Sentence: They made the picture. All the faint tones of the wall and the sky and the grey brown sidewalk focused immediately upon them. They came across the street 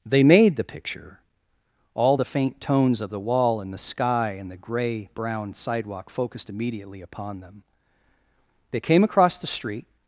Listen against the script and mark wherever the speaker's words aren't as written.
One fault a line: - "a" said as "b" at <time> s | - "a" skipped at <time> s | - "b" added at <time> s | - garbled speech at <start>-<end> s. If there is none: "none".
none